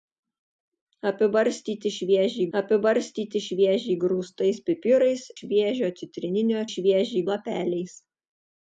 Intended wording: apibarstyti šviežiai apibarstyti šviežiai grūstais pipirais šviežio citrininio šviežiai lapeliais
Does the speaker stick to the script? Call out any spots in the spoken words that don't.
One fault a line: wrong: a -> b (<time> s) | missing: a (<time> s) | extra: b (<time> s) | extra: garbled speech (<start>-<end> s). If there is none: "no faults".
no faults